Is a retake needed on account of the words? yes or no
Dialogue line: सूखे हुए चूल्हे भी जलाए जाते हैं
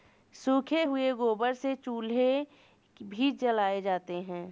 yes